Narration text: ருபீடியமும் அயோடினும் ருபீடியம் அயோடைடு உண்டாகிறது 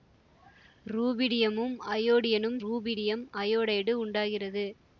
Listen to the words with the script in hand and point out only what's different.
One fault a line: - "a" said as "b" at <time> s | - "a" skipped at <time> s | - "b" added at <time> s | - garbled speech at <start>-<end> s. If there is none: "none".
none